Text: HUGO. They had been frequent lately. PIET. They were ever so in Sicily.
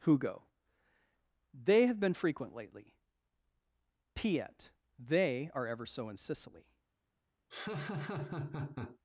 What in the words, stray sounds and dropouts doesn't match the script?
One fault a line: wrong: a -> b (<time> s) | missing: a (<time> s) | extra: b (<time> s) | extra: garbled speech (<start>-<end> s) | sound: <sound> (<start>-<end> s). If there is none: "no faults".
wrong: had -> have (1.9 s)
wrong: were -> are (5.5 s)
sound: laugh (7.5-9.0 s)